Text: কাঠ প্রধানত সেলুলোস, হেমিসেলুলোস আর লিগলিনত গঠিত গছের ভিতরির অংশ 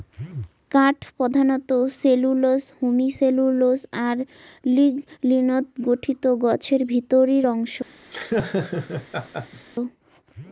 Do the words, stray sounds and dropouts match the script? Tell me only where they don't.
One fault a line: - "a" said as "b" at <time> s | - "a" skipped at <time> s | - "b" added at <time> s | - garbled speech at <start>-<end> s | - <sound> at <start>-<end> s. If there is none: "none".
- laugh at 8.1-9.7 s